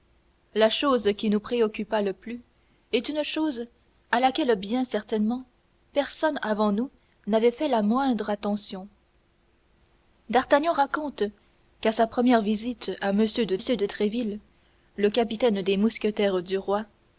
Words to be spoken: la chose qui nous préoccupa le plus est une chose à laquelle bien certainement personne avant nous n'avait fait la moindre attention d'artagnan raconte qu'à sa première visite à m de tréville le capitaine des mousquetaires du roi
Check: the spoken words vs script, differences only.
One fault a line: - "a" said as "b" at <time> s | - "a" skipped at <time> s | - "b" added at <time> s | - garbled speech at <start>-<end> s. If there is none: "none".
- "de" added at 13.6 s